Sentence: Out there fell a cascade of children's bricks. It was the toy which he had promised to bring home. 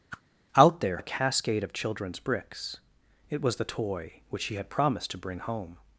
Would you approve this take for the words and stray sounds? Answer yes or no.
no